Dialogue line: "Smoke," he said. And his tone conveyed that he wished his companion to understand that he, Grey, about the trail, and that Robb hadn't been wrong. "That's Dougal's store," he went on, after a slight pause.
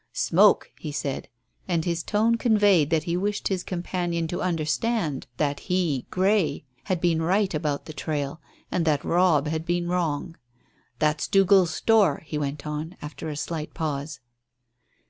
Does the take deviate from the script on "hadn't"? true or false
true